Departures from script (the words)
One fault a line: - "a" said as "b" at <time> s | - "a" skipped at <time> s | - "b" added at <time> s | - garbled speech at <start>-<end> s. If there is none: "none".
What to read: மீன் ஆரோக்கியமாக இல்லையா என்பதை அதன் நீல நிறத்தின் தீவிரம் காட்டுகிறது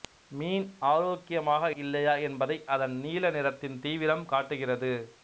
none